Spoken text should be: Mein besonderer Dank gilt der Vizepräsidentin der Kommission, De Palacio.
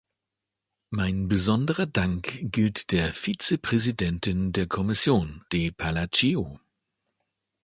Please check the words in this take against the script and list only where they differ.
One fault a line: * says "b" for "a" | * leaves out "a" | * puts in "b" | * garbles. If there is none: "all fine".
all fine